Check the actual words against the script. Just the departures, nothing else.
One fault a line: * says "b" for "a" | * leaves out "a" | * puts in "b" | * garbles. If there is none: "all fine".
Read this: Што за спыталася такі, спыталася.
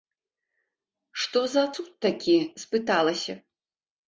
* says "цуд" for "спыталася"